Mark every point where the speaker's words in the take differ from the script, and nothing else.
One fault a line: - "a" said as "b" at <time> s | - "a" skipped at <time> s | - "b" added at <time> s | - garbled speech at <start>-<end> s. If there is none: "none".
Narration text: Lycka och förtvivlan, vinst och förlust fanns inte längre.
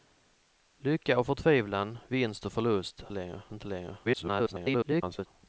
- "fanns" said as "längre" at 3.1 s
- garbled speech at 4.0-5.3 s